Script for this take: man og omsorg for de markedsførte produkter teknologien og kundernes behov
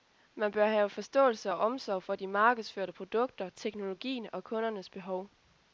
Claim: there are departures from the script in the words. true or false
true